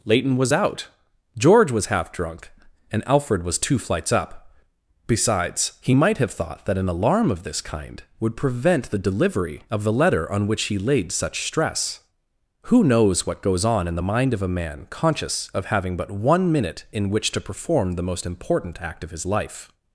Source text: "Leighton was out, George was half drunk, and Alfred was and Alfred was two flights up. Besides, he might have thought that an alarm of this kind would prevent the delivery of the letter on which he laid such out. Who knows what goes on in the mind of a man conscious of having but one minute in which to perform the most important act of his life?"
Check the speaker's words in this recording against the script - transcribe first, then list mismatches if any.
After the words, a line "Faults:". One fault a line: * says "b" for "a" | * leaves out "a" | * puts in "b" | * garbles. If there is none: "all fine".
"Leighton was out, George was half drunk, and Alfred was two flights up. Besides, he might have thought that an alarm of this kind would prevent the delivery of the letter on which he laid such stress. Who knows what goes on in the mind of a man conscious of having but one minute in which to perform the most important act of his life?"
Faults:
* leaves out "and Alfred was"
* says "stress" for "out"